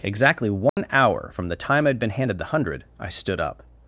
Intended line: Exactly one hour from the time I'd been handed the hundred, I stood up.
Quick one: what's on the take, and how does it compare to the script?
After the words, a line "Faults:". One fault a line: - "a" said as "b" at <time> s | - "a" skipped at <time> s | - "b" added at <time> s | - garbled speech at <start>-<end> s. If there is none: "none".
Exactly one hour from the time I'd been handed the hundred, I stood up.
Faults:
none